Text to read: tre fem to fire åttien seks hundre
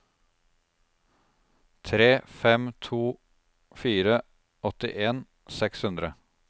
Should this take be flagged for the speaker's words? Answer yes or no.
no